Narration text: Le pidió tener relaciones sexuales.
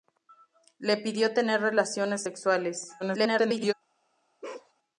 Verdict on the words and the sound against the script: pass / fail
fail